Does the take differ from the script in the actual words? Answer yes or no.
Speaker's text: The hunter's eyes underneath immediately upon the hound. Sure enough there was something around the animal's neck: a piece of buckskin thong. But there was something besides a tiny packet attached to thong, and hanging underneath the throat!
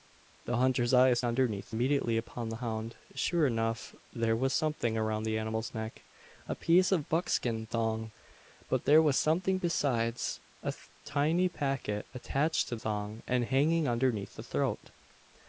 no